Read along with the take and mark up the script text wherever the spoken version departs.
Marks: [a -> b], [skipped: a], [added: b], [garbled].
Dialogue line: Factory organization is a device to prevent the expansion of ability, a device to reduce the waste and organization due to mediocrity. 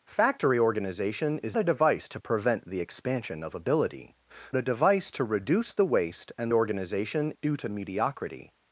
Factory organization is a device to prevent the expansion of ability, a device to reduce the waste and organization due to mediocrity.